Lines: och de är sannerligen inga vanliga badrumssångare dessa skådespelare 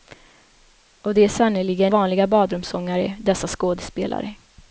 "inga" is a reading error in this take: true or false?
true